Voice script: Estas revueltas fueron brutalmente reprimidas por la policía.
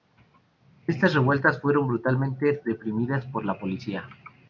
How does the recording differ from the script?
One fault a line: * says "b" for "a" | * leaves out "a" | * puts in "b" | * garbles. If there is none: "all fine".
all fine